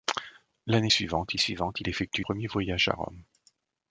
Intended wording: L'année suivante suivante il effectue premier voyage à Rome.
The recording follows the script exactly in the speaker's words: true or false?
true